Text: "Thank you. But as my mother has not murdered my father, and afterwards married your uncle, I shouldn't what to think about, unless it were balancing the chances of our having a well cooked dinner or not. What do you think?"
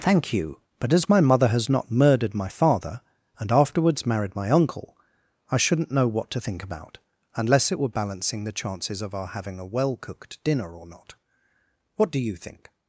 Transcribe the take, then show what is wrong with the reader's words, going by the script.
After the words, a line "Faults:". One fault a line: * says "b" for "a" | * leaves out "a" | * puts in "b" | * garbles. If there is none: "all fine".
"Thank you. But as my mother has not murdered my father, and afterwards married my uncle, I shouldn't know what to think about, unless it were balancing the chances of our having a well cooked dinner or not. What do you think?"
Faults:
* says "my" for "your"
* puts in "know"